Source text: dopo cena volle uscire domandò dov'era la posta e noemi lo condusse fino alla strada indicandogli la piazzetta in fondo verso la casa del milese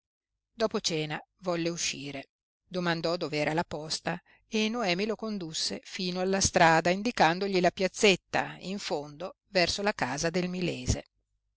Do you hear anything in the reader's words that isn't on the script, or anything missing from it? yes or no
no